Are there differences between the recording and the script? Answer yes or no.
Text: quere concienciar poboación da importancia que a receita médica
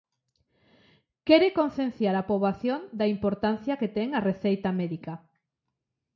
yes